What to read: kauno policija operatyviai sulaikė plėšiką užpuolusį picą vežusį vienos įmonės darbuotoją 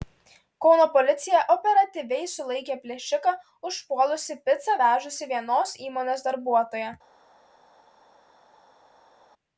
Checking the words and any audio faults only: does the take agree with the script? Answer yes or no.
yes